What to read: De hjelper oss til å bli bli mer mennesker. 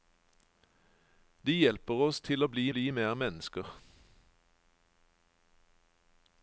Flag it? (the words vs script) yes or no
no